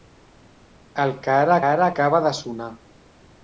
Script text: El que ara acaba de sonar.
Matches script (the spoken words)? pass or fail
fail